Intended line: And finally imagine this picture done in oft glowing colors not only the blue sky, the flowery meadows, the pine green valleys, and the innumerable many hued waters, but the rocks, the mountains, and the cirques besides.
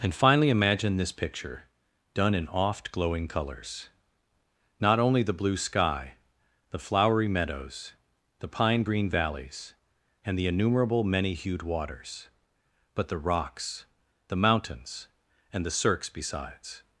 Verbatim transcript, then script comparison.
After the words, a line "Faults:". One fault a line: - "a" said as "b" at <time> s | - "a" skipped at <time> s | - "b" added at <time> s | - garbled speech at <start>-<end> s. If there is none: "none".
And finally imagine this picture done in oft glowing colors not only the blue sky, the flowery meadows, the pine green valleys, and the innumerable many hued waters, but the rocks, the mountains, and the cirques besides.
Faults:
none